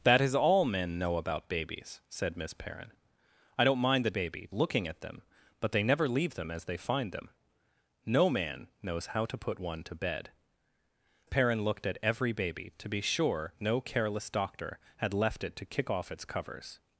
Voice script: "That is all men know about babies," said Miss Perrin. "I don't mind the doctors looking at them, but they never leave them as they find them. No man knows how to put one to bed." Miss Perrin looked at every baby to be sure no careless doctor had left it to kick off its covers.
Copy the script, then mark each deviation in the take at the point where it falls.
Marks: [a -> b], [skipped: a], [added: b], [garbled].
"That is all men know about babies," said Miss Perrin. "I don't mind the [doctors -> baby] looking at them, but they never leave them as they find them. No man knows how to put one to bed." [skipped: Miss] Perrin looked at every baby to be sure no careless doctor had left it to kick off its covers.